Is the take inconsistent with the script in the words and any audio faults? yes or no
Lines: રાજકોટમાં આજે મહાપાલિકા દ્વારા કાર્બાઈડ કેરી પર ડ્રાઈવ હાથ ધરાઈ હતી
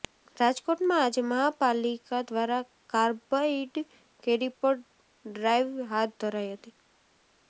no